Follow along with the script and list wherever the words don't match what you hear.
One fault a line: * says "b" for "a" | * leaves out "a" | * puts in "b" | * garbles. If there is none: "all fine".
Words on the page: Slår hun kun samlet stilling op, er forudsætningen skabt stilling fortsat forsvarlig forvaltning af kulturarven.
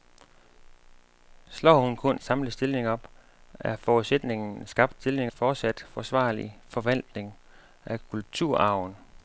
all fine